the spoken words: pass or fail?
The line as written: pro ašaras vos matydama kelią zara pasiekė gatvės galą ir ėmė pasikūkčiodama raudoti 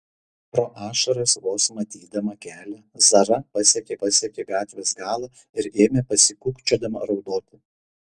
fail